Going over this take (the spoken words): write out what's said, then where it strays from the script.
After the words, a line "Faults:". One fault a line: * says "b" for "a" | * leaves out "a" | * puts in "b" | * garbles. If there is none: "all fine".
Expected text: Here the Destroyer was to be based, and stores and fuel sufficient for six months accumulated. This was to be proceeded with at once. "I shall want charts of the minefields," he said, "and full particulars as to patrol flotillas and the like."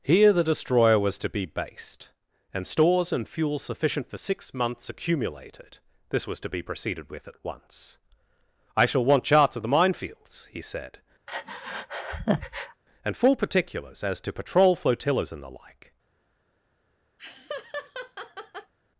Here the Destroyer was to be based, and stores and fuel sufficient for six months accumulated. This was to be proceeded with at once. "I shall want charts of the minefields," he said, "and full particulars as to patrol flotillas and the like."
Faults:
all fine